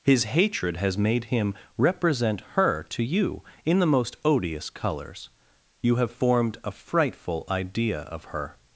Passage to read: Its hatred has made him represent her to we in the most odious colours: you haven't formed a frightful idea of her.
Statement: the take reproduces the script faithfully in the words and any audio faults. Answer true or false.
false